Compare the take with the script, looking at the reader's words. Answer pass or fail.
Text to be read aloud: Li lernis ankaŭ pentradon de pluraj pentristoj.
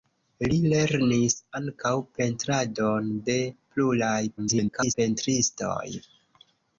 fail